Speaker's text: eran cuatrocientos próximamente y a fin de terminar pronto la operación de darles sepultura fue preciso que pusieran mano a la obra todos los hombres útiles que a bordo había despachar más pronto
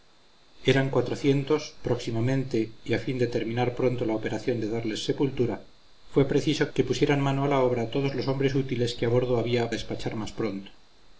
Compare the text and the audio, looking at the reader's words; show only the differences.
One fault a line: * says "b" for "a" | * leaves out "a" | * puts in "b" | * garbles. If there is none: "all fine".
all fine